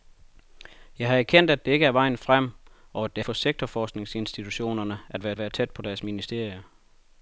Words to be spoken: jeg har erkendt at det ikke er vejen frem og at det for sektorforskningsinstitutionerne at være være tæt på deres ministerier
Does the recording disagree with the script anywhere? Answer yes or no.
no